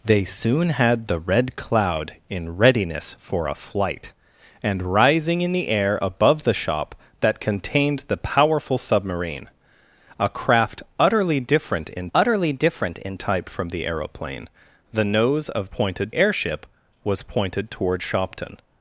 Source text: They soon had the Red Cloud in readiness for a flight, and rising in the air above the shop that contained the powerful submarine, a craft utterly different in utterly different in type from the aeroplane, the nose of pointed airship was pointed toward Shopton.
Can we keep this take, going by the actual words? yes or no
yes